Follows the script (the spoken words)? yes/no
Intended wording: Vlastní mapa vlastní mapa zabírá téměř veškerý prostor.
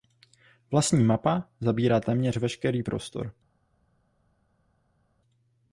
no